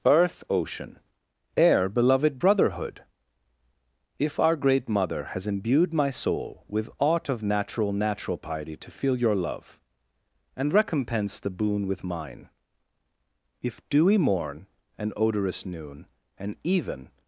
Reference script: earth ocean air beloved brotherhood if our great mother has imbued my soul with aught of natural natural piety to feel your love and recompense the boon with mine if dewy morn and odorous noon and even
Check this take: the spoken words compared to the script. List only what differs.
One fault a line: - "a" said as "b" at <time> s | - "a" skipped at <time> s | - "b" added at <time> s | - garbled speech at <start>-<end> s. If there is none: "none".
none